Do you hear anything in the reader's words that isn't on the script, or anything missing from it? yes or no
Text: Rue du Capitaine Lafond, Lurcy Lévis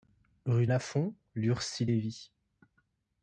yes